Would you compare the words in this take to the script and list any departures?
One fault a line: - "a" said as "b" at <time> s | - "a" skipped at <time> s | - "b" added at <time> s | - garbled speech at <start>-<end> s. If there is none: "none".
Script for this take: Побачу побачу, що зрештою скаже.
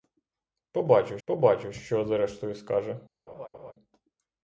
none